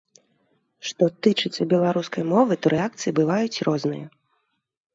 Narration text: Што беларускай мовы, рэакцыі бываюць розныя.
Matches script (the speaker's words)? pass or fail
fail